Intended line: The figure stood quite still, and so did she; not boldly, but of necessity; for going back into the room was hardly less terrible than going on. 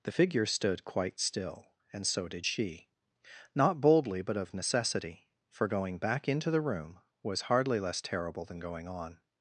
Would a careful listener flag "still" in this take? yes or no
no